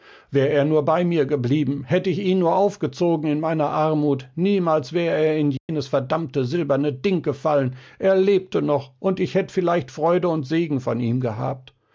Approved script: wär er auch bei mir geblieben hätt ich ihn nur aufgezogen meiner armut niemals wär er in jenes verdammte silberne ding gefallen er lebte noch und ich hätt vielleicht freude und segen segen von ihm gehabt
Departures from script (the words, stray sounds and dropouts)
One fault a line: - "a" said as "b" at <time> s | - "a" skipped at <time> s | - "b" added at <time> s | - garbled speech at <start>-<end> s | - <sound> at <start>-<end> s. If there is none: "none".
- "auch" said as "nur" at 0.7 s
- "in" added at 3.3 s
- dropout at 5.6-5.7 s
- "segen" skipped at 10.8 s